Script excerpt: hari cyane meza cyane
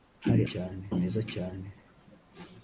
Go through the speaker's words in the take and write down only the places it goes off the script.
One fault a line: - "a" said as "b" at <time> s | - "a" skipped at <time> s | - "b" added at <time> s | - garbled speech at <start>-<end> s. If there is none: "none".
none